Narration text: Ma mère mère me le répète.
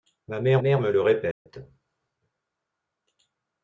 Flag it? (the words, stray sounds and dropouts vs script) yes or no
yes